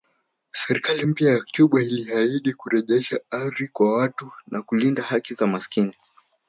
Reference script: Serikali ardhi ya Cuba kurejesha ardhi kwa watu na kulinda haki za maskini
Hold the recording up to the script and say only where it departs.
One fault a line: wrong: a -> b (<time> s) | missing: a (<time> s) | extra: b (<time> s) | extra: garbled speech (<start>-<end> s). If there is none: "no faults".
wrong: ardhi -> mpya (1.0 s)
extra: iliahidi (1.8 s)